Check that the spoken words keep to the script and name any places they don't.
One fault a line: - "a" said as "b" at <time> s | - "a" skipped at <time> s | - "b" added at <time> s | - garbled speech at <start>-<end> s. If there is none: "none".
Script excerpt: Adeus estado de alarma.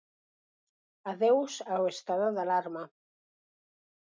- "ao" added at 1.7 s